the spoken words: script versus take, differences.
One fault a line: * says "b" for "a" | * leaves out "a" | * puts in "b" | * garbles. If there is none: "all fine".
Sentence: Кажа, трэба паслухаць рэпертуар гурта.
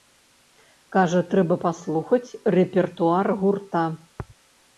all fine